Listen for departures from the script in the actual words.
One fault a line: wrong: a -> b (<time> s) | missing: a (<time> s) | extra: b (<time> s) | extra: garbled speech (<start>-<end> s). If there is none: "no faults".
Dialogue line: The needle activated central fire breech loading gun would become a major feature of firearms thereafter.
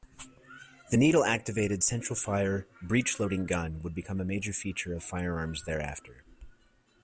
no faults